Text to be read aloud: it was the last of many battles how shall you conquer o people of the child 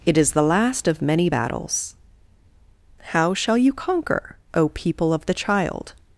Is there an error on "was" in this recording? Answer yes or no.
yes